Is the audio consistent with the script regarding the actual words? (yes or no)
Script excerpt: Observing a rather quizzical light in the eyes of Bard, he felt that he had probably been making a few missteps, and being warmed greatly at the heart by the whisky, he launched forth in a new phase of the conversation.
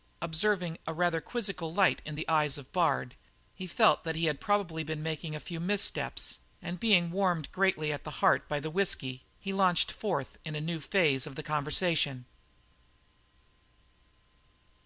yes